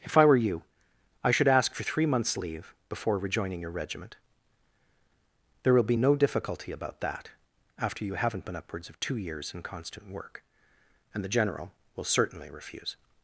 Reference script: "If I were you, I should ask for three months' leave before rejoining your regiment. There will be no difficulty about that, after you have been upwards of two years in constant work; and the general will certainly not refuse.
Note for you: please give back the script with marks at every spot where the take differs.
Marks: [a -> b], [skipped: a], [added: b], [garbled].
"If I were you, I should ask for three months' leave before rejoining your regiment. There will be no difficulty about that, after you [have -> haven't] been upwards of two years in constant work; and the general will certainly [skipped: not] refuse.